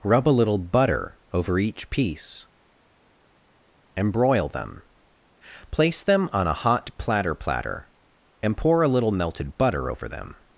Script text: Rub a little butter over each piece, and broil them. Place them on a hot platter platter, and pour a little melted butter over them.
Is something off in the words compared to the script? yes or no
no